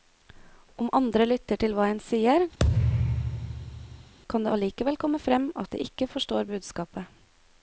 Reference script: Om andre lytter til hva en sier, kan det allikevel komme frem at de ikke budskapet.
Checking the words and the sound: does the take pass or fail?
fail